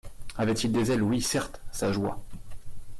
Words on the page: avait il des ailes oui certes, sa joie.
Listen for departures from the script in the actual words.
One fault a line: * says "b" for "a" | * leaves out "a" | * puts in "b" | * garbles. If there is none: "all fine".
all fine